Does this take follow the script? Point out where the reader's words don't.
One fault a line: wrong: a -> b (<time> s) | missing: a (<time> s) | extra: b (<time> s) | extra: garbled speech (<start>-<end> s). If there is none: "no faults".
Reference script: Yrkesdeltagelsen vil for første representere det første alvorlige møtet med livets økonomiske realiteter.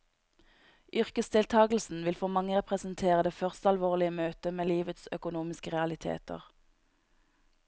wrong: første -> mange (2.4 s)